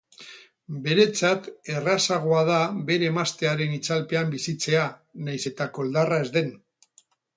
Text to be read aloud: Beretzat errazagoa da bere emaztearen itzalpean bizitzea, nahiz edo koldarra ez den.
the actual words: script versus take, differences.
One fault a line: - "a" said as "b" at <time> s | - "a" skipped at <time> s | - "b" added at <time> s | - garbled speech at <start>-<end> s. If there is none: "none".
- "edo" said as "eta" at 5.5 s